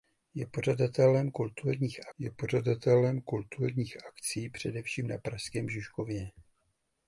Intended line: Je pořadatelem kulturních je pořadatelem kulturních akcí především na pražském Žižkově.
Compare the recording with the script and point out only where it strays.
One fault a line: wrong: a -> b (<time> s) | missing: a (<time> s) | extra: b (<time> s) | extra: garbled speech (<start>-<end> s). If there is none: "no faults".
no faults